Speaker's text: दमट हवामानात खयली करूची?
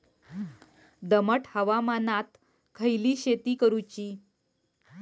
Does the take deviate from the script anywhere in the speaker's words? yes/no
yes